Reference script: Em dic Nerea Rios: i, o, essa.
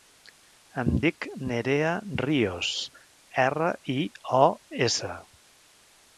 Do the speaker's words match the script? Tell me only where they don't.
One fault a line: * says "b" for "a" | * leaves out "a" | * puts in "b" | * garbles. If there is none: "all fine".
* puts in "erra"